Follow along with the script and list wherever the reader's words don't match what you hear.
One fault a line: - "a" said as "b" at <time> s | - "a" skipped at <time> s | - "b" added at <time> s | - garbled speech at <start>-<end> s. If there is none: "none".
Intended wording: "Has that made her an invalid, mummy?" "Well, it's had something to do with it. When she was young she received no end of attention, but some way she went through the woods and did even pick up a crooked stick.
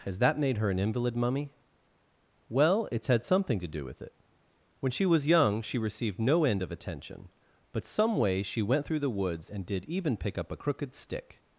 none